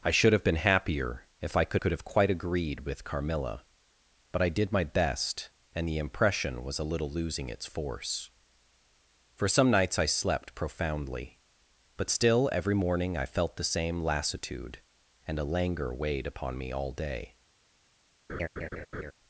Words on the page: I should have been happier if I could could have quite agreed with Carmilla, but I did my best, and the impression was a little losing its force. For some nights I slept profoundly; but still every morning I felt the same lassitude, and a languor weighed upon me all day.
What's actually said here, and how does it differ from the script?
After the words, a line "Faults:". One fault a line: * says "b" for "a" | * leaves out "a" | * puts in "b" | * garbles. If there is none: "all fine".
I should have been happier if I could could have quite agreed with Carmilla, but I did my best, and the impression was a little losing its force. For some nights I slept profoundly; but still every morning I felt the same lassitude, and a languor weighed upon me all day.
Faults:
all fine